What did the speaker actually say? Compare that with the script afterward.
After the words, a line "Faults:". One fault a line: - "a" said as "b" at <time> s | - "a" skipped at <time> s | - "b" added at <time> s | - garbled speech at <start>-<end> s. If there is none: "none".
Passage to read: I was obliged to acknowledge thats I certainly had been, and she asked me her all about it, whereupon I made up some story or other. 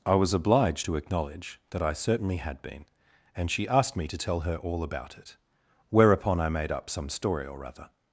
I was obliged to acknowledge that I certainly had been, and she asked me to tell her all about it, whereupon I made up some story or other.
Faults:
- "thats" said as "that" at 1.7 s
- "to tell" added at 4.1 s